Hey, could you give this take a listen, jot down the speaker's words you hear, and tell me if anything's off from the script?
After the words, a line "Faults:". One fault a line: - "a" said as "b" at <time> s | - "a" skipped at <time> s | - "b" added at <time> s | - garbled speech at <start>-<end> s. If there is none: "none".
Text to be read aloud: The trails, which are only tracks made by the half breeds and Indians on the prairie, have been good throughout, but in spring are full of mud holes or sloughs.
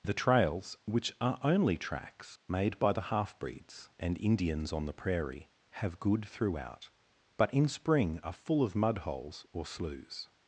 The trails, which are only tracks made by the half breeds and Indians on the prairie, have good throughout, but in spring are full of mud holes or sloughs.
Faults:
- "been" skipped at 6.0 s